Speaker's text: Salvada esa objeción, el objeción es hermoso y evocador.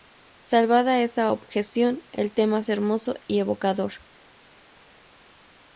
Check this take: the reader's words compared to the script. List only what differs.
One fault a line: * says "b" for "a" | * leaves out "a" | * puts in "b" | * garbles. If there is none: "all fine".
* says "tema" for "objeción"